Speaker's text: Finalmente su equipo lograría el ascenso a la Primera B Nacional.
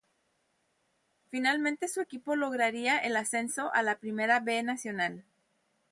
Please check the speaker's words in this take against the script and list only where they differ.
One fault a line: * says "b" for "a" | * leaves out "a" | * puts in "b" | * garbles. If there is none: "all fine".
all fine